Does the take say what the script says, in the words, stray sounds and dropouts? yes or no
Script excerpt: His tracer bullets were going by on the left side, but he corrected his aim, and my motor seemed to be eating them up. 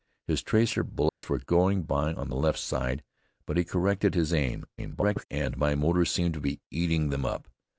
no